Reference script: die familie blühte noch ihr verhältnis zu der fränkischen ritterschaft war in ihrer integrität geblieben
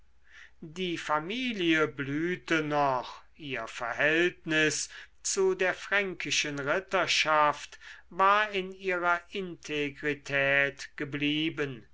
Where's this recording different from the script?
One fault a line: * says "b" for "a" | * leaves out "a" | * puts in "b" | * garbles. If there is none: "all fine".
all fine